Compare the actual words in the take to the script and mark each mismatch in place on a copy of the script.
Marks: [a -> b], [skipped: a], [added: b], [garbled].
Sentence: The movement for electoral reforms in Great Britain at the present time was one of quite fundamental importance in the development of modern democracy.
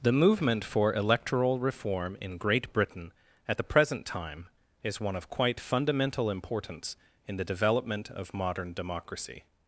The movement for electoral [reforms -> reform] in Great Britain at the present time [was -> is] one of quite fundamental importance in the development of modern democracy.